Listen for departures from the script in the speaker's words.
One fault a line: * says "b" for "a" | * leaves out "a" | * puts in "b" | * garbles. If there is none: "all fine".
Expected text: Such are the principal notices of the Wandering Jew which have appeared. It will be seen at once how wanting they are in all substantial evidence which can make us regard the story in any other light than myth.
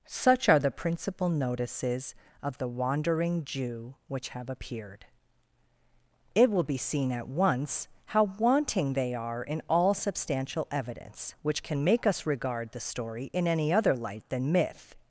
all fine